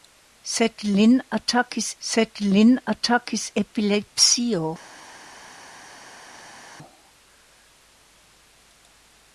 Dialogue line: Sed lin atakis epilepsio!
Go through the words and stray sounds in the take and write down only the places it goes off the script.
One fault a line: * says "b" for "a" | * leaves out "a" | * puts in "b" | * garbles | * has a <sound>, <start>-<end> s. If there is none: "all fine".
* puts in "sed lin atakis"